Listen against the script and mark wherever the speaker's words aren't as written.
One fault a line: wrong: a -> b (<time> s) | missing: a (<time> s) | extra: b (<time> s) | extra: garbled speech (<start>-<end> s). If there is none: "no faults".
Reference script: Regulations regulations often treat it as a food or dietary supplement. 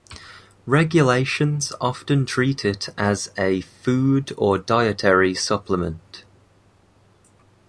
missing: regulations (1.7 s)